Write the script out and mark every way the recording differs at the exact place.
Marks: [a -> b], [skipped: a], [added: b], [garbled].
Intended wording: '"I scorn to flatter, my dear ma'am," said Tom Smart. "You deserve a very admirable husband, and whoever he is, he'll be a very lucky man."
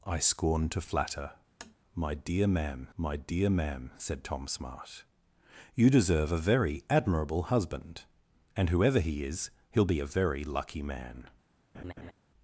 '"I scorn to flatter, my dear ma'am," [added: my dear ma'am] said Tom Smart. "You deserve a very admirable husband, and whoever he is, he'll be a very lucky man."